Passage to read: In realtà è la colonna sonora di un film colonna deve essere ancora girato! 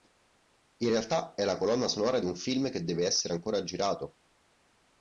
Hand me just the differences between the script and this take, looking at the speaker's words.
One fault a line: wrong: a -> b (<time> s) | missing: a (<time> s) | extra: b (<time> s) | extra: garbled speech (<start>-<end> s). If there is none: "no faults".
wrong: colonna -> che (2.7 s)